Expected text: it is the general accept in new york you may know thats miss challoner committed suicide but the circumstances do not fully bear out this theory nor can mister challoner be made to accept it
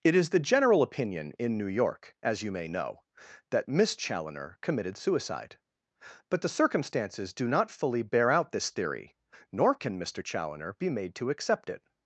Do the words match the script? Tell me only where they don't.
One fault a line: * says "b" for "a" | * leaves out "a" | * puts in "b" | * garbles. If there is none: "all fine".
* says "opinion" for "accept"
* puts in "as"
* says "that" for "thats"